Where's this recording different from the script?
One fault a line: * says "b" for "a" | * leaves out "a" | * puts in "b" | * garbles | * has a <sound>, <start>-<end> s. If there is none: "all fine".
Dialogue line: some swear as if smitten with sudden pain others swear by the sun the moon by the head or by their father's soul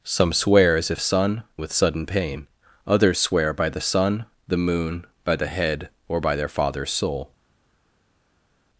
* says "sun" for "smitten"